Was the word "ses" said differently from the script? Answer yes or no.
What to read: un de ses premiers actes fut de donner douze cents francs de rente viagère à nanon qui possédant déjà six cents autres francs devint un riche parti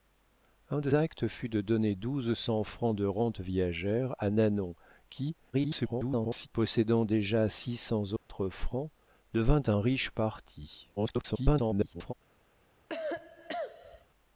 yes